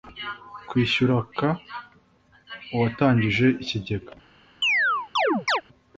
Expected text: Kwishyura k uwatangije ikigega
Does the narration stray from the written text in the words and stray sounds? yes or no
yes